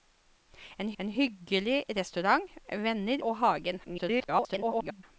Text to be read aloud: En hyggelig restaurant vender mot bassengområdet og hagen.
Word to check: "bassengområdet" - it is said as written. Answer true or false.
false